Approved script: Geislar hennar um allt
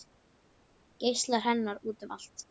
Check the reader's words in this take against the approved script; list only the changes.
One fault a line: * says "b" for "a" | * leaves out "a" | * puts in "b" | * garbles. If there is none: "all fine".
* puts in "út"